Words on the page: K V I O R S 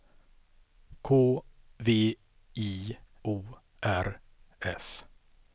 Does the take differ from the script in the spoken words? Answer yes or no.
no